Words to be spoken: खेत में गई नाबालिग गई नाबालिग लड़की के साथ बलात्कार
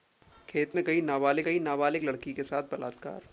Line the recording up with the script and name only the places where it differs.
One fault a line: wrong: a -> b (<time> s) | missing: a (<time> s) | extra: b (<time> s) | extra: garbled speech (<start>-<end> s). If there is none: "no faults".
no faults